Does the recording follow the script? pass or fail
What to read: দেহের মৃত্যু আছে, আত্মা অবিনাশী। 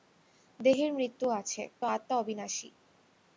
pass